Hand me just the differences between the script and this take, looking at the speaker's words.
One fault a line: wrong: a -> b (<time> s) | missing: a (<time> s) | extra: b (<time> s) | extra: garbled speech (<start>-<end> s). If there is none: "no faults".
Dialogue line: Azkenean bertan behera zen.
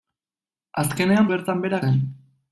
no faults